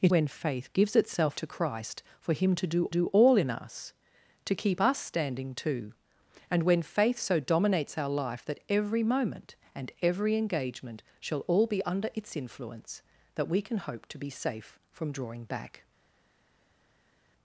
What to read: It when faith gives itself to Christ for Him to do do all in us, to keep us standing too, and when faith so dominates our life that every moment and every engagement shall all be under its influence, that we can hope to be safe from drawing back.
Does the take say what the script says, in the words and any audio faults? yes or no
yes